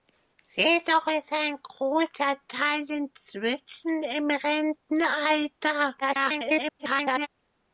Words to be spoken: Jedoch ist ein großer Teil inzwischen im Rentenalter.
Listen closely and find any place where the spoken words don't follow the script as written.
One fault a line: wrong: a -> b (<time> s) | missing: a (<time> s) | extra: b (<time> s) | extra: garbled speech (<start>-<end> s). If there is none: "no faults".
extra: garbled speech (6.0-7.3 s)